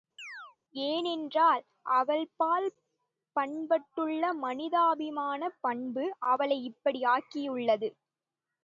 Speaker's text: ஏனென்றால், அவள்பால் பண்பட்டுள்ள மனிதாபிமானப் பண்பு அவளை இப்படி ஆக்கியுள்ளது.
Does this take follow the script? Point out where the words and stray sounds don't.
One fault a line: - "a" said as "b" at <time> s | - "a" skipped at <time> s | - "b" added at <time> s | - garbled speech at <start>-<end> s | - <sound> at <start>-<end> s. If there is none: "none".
- chirp at 0.2-0.6 s